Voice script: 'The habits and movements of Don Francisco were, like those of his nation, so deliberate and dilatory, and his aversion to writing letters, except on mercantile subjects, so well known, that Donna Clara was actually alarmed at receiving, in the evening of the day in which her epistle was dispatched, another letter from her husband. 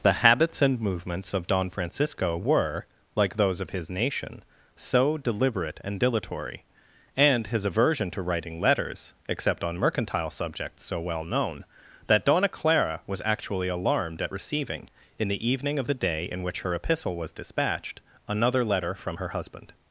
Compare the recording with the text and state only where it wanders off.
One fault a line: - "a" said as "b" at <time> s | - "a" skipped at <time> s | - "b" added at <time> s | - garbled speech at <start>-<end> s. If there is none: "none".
none